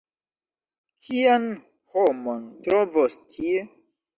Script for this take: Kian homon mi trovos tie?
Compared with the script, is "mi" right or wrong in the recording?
wrong